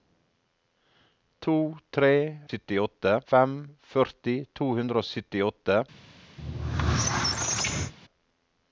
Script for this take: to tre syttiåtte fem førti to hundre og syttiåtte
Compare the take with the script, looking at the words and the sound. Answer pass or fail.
fail